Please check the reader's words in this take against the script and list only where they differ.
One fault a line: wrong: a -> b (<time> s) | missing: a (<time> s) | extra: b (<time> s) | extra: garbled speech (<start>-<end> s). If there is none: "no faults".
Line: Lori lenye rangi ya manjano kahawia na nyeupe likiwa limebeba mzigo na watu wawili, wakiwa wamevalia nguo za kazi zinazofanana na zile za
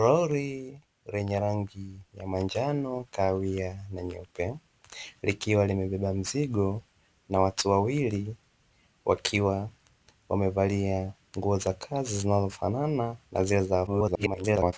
extra: garbled speech (13.9-14.7 s)